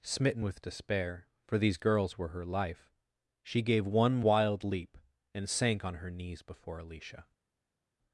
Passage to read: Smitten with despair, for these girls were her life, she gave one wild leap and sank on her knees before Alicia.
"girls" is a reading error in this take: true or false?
false